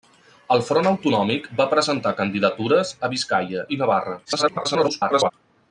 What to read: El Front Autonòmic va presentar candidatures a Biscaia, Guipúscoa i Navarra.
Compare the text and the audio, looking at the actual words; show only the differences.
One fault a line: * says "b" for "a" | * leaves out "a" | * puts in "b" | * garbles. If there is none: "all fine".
* leaves out "Guipúscoa"
* garbles